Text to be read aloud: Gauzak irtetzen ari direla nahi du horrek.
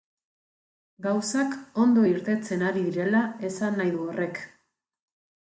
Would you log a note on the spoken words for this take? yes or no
yes